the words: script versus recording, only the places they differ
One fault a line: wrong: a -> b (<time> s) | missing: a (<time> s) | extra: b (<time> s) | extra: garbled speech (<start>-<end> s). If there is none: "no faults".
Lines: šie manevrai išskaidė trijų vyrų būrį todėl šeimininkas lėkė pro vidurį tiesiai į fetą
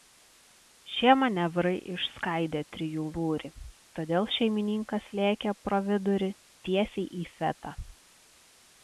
missing: vyrų (3.0 s)